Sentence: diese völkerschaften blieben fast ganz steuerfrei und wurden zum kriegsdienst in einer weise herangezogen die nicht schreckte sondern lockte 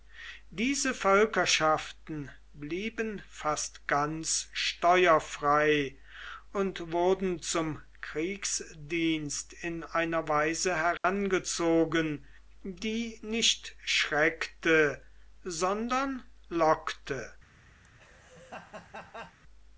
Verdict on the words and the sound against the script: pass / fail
fail